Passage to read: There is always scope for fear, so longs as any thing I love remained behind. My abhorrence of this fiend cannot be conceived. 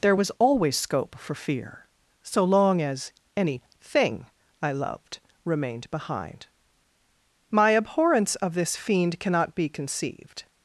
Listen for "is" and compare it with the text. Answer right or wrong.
wrong